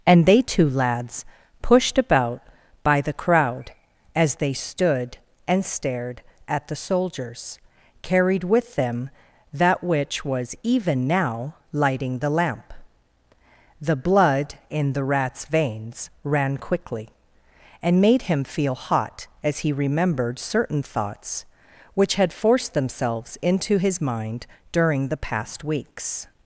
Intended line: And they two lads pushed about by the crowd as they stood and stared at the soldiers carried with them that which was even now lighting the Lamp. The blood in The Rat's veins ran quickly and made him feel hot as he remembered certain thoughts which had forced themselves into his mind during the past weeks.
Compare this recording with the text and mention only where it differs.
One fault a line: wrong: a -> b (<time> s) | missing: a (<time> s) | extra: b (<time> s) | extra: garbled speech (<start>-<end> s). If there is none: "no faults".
no faults